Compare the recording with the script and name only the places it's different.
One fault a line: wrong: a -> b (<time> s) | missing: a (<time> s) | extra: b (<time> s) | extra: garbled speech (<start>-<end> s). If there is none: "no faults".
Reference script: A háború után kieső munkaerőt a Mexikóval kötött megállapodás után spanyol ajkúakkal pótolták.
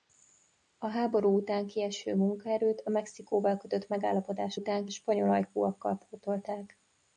no faults